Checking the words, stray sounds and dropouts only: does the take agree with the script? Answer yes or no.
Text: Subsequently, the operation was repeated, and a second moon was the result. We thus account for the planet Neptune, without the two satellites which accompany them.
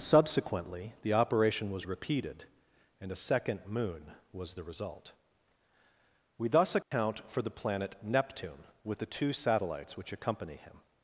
no